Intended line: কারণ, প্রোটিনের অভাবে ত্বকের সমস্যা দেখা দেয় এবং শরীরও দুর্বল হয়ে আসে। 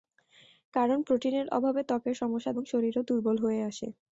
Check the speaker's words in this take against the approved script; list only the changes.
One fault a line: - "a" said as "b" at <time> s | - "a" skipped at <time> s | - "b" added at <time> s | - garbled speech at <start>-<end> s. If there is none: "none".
- "দেখা দেয়" skipped at 2.5 s